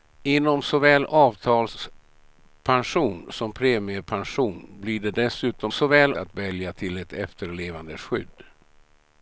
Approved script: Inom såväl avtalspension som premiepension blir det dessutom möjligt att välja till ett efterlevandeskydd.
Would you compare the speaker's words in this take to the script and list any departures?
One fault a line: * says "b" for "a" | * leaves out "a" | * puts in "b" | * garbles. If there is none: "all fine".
* says "såväl" for "möjligt"